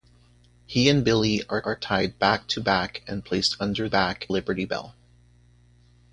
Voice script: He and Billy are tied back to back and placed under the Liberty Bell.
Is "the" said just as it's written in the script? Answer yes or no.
no